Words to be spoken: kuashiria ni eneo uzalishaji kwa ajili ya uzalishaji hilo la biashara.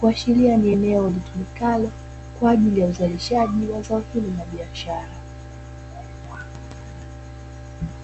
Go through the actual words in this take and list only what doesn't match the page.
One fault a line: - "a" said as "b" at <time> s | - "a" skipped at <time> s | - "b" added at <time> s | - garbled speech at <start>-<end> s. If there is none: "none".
- "uzalishaji" said as "litumikalo" at 1.1 s
- "wa zao" added at 3.7 s